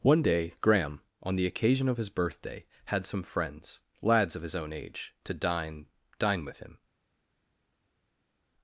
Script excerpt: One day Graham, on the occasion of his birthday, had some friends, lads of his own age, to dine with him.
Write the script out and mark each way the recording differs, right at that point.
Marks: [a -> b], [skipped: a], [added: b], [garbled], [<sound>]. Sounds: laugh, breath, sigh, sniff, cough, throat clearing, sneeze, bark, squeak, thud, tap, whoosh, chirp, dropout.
One day Graham, on the occasion of his birthday, had some friends, lads of his own age, to dine [added: dine] with him.